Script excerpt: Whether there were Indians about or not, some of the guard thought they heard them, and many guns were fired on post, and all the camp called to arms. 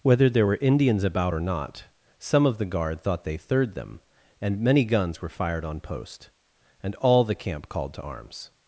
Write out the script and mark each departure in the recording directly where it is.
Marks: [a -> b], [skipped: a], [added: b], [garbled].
Whether there were Indians about or not, some of the guard thought they [heard -> third] them, and many guns were fired on post, and all the camp called to arms.